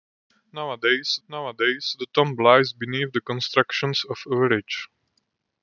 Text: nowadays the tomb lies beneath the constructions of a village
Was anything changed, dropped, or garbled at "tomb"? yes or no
no